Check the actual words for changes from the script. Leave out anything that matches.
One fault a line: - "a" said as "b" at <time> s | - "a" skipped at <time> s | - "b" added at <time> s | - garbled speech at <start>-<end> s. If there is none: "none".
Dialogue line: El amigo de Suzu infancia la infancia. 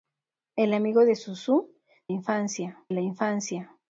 none